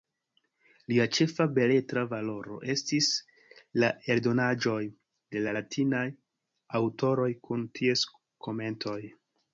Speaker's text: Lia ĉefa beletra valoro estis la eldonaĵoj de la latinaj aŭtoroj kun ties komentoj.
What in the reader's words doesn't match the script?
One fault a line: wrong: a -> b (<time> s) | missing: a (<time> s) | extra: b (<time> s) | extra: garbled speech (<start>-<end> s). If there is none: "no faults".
no faults